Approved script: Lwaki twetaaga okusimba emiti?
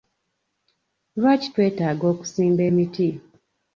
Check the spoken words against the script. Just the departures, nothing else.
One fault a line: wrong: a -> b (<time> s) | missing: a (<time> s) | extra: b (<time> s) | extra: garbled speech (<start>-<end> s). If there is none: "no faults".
no faults